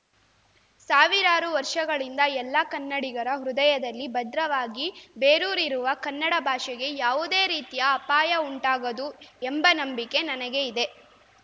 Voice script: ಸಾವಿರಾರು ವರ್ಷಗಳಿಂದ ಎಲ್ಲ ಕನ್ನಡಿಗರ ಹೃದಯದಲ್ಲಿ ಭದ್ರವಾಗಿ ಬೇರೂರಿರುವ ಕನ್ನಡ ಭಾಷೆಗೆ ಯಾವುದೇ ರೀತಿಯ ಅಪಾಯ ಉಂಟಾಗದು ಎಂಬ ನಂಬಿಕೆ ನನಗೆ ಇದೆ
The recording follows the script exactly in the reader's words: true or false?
true